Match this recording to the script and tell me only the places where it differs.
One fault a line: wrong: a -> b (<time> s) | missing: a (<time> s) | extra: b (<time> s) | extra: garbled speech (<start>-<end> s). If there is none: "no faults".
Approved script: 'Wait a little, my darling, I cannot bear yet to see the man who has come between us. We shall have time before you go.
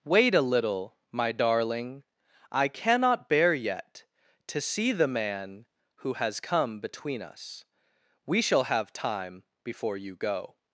no faults